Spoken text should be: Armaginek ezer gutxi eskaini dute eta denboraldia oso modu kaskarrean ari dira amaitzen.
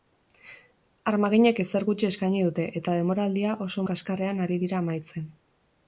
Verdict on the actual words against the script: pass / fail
fail